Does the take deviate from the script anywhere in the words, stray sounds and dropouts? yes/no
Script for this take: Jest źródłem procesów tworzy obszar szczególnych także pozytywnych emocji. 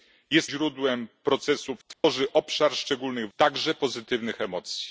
yes